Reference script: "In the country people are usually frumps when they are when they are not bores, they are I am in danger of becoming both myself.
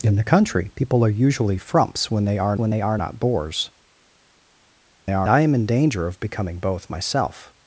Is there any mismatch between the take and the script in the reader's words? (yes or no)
no